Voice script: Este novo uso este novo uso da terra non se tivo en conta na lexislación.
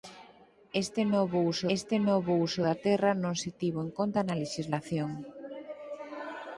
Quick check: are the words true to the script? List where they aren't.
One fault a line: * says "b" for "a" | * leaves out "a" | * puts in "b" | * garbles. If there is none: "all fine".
all fine